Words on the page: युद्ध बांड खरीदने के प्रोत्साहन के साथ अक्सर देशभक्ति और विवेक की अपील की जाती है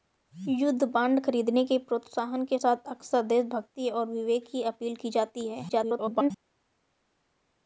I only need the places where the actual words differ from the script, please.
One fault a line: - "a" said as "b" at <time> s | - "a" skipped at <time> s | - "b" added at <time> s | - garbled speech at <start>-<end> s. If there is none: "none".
- garbled speech at 5.7-6.3 s